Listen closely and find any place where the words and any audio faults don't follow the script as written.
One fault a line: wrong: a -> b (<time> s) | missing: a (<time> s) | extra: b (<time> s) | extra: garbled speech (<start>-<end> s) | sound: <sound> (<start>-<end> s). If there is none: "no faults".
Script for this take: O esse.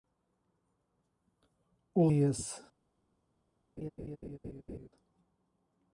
sound: laugh (3.8-4.9 s)